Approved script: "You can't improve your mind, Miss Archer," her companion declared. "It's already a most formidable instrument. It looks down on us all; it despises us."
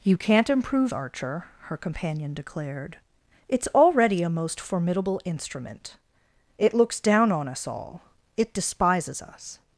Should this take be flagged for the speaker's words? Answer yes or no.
yes